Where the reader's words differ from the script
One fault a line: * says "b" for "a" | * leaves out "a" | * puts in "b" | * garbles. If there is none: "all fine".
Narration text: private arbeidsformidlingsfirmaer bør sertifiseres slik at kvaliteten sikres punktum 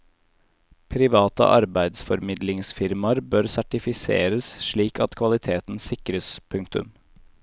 all fine